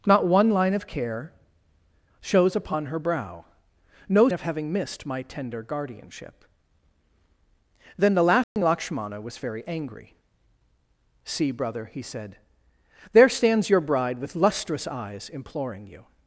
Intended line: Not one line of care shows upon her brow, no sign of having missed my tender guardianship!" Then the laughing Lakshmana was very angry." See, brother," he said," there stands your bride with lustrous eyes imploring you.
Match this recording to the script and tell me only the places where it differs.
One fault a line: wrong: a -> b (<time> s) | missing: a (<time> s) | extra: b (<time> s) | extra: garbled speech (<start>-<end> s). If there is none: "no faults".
missing: sign (4.3 s)